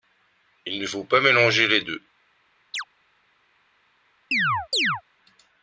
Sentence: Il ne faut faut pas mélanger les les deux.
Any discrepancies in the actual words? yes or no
yes